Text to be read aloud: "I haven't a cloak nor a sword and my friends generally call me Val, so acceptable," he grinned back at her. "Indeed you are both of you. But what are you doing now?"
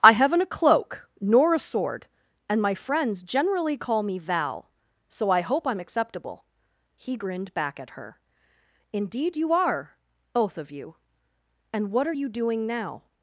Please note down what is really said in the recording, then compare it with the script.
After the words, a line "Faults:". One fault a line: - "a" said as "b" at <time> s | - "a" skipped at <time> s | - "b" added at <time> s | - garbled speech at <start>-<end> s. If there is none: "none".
"I haven't a cloak nor a sword and my friends generally call me Val, so I hope I'm acceptable," he grinned back at her. "Indeed you are both of you. And what are you doing now?"
Faults:
- "I hope I'm" added at 5.3 s
- "But" said as "And" at 11.7 s